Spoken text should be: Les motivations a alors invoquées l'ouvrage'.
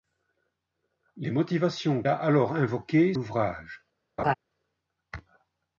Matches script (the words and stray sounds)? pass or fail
fail